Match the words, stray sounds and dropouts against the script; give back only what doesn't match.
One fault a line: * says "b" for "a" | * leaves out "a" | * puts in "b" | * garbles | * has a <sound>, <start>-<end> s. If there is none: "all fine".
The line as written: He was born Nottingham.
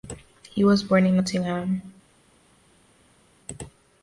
* puts in "in"